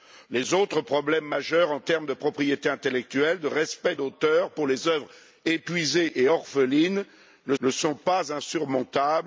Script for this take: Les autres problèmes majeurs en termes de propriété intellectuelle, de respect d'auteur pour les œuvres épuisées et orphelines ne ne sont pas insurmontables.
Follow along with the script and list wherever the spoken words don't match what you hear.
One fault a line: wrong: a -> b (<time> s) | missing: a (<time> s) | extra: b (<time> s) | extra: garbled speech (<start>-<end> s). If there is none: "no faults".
no faults